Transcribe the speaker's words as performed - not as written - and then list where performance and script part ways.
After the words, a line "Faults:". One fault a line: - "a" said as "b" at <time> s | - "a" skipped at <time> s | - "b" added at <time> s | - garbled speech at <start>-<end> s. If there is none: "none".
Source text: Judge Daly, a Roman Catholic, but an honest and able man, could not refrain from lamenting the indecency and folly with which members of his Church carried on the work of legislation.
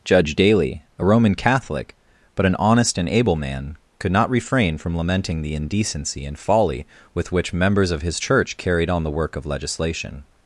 Judge Daly, a Roman Catholic, but an honest and able man, could not refrain from lamenting the indecency and folly with which members of his Church carried on the work of legislation.
Faults:
none